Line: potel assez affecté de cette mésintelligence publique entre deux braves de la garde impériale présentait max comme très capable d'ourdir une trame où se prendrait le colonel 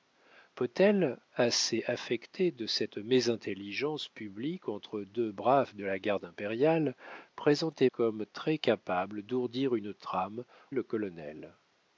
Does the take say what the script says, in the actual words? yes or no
no